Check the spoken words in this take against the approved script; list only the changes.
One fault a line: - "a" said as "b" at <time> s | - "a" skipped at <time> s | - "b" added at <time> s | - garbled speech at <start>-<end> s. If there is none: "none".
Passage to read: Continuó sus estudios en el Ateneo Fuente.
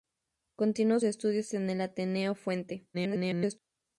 - "sus" skipped at 1.0 s
- garbled speech at 2.9-3.6 s